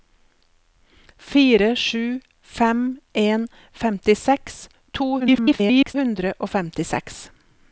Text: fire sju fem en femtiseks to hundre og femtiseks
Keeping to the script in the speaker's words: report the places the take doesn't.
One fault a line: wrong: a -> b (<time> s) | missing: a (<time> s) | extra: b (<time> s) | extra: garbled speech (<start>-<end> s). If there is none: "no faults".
extra: garbled speech (5.2-5.9 s)